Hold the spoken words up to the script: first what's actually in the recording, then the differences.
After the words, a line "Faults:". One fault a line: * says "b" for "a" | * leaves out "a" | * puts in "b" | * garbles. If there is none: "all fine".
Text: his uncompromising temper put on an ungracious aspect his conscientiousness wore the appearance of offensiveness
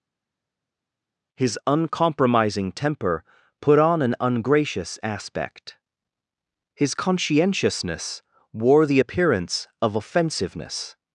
his uncompromising temper put on an ungracious aspect his conscientiousness wore the appearance of offensiveness
Faults:
all fine